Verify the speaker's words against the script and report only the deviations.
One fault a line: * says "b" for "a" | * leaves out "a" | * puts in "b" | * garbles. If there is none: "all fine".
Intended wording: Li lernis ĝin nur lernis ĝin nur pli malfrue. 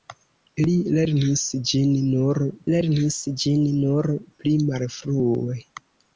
all fine